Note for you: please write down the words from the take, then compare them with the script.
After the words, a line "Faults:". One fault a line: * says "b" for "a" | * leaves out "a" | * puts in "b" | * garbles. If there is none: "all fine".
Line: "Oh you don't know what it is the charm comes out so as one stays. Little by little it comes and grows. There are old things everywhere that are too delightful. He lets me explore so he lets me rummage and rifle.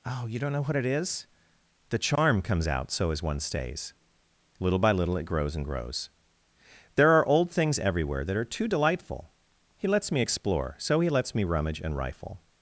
"Oh you don't know what it is the charm comes out so as one stays. Little by little it grows and grows. There are old things everywhere that are too delightful. He lets me explore so he lets me rummage and rifle.
Faults:
* says "grows" for "comes"